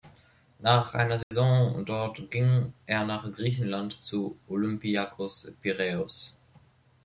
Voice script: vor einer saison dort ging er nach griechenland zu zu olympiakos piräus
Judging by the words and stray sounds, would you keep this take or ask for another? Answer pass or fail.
fail